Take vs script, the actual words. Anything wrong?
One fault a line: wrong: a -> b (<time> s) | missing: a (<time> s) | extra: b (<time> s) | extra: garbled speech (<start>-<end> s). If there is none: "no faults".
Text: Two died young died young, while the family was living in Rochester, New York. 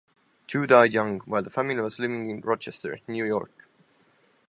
missing: died young (1.2 s)